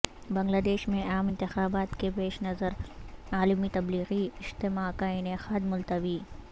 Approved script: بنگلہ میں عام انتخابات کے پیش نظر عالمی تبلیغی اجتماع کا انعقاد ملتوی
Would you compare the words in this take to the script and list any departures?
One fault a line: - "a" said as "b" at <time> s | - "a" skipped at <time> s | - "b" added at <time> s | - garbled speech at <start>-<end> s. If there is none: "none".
- "دیش" added at 0.7 s